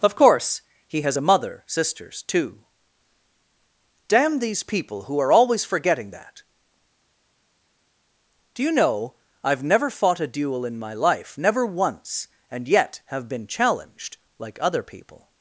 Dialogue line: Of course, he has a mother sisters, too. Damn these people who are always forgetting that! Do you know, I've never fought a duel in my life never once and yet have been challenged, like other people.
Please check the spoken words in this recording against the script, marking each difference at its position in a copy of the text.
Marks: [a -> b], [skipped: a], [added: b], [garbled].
Of course, he has a mother sisters, too. Damn these people who are always forgetting that! Do you know, I've never fought a duel in my life never once and yet have been challenged, like other people.